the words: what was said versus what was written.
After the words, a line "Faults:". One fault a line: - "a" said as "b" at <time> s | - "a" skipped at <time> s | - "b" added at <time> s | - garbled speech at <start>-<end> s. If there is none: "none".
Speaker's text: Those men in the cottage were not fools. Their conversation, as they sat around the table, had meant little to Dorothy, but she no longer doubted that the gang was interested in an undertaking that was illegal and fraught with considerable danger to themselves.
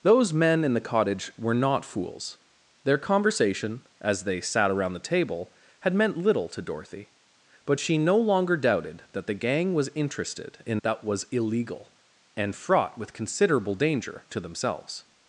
Those men in the cottage were not fools. Their conversation, as they sat around the table, had meant little to Dorothy, but she no longer doubted that the gang was interested in that was illegal and fraught with considerable danger to themselves.
Faults:
- "an undertaking" skipped at 10.8 s